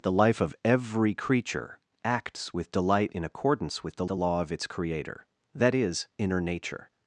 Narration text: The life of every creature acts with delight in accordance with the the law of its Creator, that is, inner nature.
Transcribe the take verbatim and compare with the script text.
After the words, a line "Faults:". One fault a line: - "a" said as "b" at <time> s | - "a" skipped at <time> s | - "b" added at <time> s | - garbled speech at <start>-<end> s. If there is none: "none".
The life of every creature acts with delight in accordance with the the law of its Creator, that is, inner nature.
Faults:
none